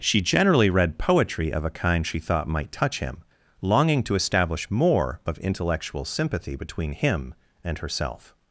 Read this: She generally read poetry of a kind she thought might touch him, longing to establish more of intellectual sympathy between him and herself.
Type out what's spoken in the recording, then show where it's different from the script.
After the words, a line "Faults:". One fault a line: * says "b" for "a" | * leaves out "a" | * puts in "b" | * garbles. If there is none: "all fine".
She generally read poetry of a kind she thought might touch him, longing to establish more of intellectual sympathy between him and herself.
Faults:
all fine